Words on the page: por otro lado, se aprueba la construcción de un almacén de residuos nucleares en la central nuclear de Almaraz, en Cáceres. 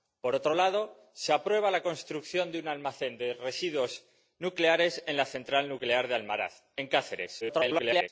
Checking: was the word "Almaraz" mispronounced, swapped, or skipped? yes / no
no